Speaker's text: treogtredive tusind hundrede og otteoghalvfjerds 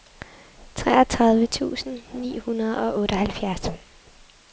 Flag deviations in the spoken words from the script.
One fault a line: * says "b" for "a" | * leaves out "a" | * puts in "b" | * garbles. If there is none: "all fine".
* puts in "ni"